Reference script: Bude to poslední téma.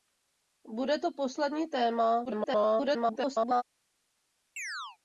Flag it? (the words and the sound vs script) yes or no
yes